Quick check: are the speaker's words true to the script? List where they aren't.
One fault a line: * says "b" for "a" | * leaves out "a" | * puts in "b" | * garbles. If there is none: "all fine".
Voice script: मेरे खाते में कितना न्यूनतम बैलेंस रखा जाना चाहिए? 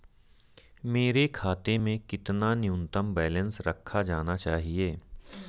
all fine